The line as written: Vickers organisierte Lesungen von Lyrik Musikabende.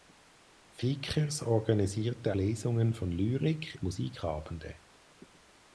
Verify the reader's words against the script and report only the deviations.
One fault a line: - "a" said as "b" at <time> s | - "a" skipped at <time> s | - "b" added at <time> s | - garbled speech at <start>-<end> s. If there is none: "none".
none